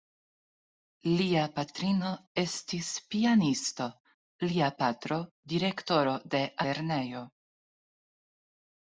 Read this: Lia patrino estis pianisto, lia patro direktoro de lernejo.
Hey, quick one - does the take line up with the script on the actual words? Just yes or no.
yes